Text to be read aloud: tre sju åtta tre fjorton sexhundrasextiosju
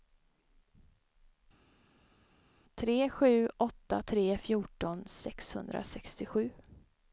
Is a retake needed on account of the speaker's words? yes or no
no